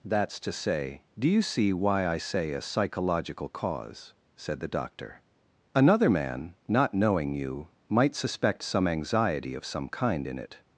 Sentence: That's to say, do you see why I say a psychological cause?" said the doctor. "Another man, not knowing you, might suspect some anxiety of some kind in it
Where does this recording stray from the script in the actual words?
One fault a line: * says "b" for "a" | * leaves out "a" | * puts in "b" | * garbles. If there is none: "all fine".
all fine